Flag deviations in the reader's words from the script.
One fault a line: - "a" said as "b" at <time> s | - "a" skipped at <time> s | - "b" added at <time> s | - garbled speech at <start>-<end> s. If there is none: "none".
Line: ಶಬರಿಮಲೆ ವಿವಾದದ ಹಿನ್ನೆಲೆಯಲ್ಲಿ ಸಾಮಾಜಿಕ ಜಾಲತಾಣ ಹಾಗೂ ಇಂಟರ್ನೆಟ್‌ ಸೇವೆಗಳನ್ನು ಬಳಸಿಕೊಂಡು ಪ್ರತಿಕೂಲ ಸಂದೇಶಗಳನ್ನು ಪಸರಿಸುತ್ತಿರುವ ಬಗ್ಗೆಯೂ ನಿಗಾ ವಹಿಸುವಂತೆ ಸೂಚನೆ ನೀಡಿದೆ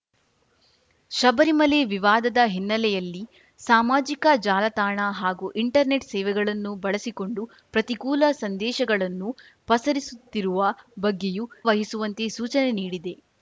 - "ನಿಗಾ" skipped at 11.4 s